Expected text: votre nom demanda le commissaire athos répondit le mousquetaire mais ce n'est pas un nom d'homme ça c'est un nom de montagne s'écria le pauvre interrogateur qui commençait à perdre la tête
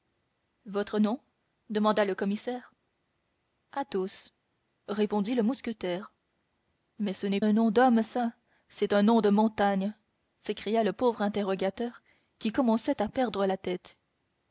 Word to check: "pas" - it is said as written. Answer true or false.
false